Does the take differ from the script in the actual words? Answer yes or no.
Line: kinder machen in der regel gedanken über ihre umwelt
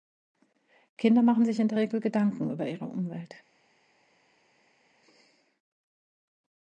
yes